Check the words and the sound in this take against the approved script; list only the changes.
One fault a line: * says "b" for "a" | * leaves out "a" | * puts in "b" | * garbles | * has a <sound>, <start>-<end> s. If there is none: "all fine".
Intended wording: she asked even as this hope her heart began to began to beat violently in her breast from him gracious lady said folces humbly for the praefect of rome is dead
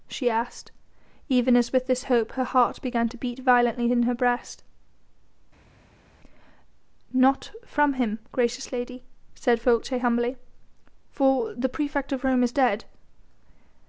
* puts in "with"
* leaves out "began to"
* puts in "not"